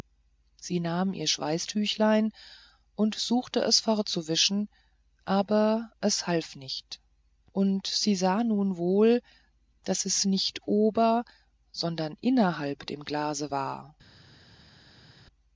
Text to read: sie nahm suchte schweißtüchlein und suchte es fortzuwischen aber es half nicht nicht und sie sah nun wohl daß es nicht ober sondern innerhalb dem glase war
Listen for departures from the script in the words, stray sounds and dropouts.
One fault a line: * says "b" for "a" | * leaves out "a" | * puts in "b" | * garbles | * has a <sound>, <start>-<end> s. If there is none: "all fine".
* says "ihr" for "suchte"
* leaves out "nicht"